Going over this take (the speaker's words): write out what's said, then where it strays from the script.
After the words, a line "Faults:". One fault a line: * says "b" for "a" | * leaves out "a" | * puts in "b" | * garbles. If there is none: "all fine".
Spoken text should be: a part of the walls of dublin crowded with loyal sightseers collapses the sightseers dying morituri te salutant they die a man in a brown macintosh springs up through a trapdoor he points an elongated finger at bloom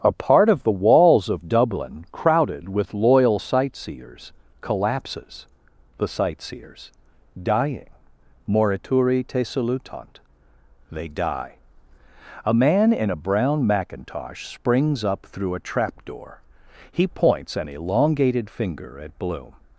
a part of the walls of dublin crowded with loyal sightseers collapses the sightseers dying morituri te salutant they die a man in a brown macintosh springs up through a trapdoor he points an elongated finger at bloom
Faults:
all fine